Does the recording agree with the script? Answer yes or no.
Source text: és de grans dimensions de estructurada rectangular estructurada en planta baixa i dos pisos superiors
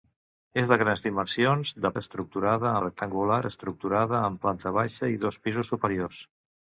yes